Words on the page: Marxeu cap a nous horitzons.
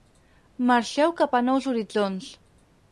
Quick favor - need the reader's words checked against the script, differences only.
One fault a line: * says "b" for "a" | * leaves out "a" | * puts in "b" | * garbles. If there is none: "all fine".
all fine